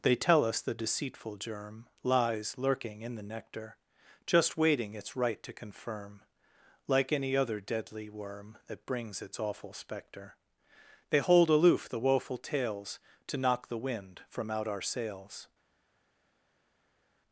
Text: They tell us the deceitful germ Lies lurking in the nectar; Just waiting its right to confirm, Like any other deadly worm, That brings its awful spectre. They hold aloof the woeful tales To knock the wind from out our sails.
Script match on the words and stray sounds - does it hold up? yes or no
yes